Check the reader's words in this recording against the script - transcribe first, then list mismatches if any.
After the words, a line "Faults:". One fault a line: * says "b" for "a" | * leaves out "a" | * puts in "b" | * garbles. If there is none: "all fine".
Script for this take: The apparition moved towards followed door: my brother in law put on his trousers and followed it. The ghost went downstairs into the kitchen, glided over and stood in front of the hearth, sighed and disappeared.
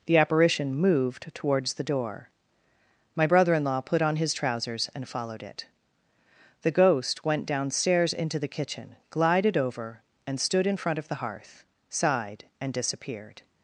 The apparition moved towards the door: my brother in law put on his trousers and followed it. The ghost went downstairs into the kitchen, glided over and stood in front of the hearth, sighed and disappeared.
Faults:
* says "the" for "followed"